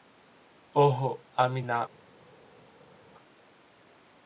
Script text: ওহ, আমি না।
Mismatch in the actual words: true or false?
false